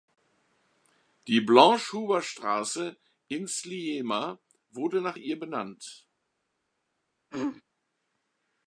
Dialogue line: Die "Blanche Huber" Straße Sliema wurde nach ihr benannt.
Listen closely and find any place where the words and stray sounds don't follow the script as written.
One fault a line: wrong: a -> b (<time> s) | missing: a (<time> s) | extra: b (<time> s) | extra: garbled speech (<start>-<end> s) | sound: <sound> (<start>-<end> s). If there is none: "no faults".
extra: in (3.3 s)
sound: throat clearing (7.3-7.6 s)